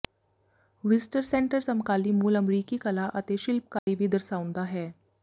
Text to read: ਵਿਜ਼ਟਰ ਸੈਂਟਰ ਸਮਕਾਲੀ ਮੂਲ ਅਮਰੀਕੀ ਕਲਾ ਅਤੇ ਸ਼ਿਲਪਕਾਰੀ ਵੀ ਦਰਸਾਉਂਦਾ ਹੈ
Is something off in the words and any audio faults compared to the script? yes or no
yes